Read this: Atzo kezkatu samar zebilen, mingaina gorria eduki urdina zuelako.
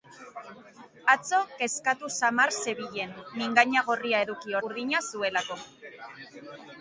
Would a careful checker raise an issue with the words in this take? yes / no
no